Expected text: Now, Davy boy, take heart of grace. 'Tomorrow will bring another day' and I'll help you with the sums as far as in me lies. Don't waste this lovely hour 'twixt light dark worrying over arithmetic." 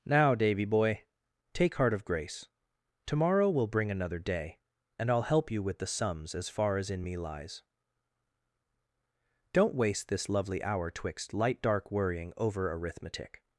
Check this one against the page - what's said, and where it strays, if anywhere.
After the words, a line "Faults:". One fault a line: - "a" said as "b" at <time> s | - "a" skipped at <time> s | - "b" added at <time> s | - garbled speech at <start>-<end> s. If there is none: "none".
Now, Davy boy, take heart of grace. 'Tomorrow will bring another day' and I'll help you with the sums as far as in me lies. Don't waste this lovely hour 'twixt light dark worrying over arithmetic."
Faults:
none